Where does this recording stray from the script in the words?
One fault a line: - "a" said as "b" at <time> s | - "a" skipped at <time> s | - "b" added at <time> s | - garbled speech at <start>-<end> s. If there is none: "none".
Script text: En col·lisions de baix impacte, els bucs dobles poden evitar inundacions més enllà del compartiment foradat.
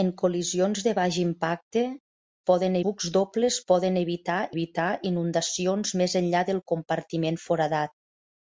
- "els" said as "poden" at 2.5 s
- "evitar" added at 4.5 s